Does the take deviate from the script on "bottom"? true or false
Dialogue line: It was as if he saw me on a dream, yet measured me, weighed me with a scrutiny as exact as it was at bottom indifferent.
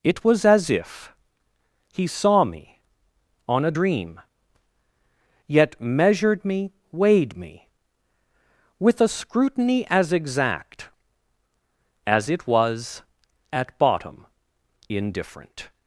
false